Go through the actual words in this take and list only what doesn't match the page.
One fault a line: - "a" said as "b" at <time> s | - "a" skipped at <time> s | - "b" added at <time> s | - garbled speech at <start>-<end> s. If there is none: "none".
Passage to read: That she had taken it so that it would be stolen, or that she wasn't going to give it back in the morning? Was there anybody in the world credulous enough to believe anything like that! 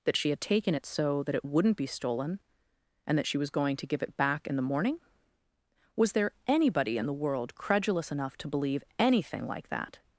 - "would" said as "wouldn't" at 1.4 s
- "or" said as "and" at 3.1 s
- "wasn't" said as "was" at 3.4 s